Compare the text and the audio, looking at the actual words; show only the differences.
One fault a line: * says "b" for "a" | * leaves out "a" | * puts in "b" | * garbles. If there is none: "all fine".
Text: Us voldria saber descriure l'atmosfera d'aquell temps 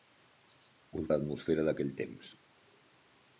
* leaves out "voldria saber descriure"